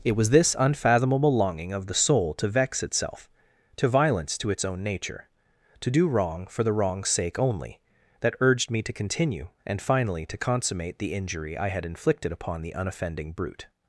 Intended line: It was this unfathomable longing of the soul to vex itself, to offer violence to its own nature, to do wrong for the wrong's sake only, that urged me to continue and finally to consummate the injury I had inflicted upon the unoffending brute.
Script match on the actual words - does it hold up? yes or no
no